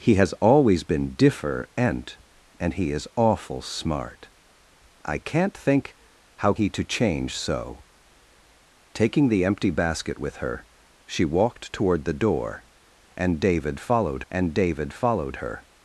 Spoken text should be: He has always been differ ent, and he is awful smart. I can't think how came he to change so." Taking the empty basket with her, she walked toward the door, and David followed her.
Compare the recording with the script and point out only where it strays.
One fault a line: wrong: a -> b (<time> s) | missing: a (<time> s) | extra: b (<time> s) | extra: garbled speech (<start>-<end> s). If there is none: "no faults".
missing: came (6.5 s)
extra: and David followed (14.3 s)